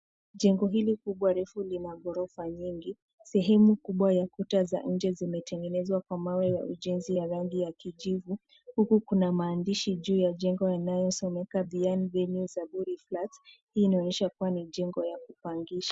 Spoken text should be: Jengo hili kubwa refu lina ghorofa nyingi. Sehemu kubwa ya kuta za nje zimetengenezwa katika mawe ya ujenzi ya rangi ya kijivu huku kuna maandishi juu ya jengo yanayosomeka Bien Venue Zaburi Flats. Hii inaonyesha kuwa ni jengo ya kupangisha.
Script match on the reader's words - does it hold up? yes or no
no